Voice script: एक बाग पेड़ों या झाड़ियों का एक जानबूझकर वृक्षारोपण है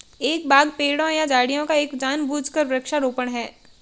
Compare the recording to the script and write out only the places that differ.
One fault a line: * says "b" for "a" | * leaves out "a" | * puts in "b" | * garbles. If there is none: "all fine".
all fine